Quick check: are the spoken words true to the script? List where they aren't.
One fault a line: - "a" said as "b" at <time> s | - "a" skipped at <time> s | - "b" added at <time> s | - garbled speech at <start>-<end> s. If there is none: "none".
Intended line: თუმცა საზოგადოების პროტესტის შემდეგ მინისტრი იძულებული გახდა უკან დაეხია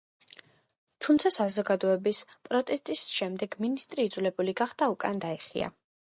none